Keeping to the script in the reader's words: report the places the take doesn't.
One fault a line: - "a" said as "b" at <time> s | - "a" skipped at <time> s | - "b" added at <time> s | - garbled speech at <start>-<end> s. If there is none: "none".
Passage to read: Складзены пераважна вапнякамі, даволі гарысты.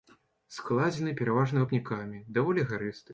none